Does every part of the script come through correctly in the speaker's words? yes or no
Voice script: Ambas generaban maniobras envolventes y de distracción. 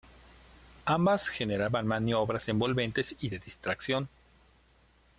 yes